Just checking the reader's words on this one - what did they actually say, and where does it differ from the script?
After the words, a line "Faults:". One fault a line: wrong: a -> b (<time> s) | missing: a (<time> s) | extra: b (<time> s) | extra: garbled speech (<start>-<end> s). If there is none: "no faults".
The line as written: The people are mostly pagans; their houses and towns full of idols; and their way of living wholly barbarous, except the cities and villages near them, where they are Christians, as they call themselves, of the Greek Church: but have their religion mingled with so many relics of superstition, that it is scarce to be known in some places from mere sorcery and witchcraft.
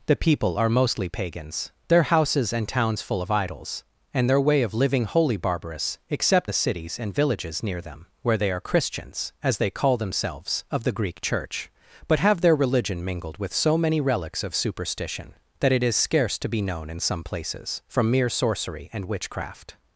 The people are mostly pagans; their houses and towns full of idols; and their way of living wholly barbarous, except the cities and villages near them, where they are Christians, as they call themselves, of the Greek Church: but have their religion mingled with so many relics of superstition, that it is scarce to be known in some places from mere sorcery and witchcraft.
Faults:
no faults